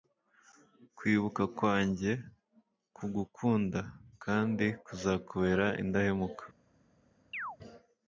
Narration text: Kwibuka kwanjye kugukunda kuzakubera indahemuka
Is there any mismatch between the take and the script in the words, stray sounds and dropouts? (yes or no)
yes